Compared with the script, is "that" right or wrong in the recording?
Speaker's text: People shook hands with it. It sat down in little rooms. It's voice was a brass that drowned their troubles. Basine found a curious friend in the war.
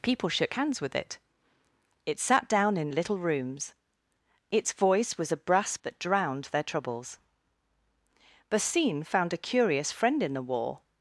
right